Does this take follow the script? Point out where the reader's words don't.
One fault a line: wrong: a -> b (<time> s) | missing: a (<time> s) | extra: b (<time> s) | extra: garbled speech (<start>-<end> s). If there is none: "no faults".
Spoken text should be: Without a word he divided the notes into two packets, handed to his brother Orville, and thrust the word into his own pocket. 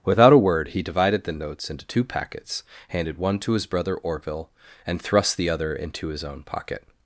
extra: one (3.2 s)
wrong: word -> other (5.5 s)